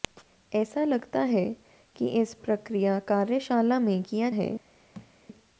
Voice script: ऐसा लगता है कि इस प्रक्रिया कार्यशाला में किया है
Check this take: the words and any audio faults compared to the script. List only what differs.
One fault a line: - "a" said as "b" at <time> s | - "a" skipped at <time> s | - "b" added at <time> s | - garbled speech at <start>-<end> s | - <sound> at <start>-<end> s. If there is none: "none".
- thud at 4.9-5.1 s